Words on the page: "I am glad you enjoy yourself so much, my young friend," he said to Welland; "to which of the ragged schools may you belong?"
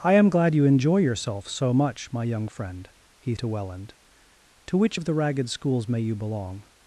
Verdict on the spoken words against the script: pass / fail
fail